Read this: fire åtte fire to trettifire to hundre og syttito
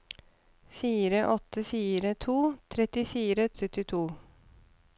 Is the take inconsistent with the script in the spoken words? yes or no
yes